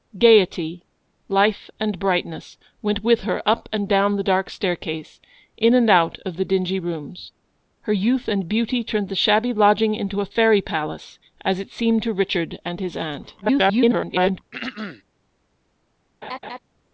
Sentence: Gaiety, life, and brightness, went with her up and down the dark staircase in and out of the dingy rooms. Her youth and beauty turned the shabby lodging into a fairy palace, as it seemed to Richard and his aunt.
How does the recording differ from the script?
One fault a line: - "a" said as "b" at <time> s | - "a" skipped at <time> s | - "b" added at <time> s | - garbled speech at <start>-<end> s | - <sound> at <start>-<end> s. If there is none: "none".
- garbled speech at 13.4-14.4 s
- throat clearing at 14.5-15.0 s
- laugh at 16.2-16.6 s